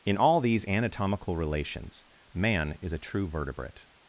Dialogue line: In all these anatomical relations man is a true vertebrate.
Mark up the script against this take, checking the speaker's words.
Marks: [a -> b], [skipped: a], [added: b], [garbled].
In all these anatomical relations man is a true vertebrate.